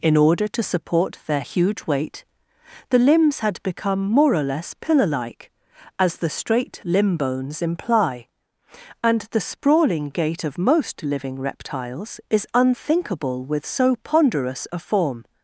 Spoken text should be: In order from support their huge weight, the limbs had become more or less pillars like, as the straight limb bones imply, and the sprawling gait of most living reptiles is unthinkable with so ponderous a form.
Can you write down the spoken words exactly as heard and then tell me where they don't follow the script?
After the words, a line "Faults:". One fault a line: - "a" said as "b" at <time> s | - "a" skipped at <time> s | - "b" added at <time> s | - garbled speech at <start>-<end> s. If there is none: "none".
In order to support their huge weight, the limbs had become more or less pillar like, as the straight limb bones imply, and the sprawling gait of most living reptiles is unthinkable with so ponderous a form.
Faults:
- "from" said as "to" at 0.5 s
- "pillars" said as "pillar" at 4.7 s